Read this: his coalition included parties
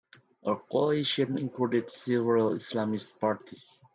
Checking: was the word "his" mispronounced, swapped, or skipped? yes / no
yes